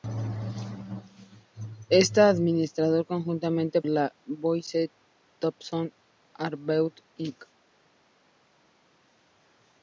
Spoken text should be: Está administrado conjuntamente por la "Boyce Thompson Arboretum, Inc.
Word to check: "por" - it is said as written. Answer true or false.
false